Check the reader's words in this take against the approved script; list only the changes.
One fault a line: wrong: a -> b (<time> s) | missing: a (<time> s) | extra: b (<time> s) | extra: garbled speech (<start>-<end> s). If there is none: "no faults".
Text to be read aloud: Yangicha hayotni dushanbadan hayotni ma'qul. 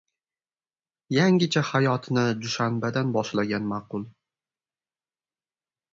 wrong: hayotni -> boshlagan (3.2 s)